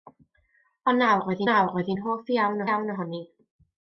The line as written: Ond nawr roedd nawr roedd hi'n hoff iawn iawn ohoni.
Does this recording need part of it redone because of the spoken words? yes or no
no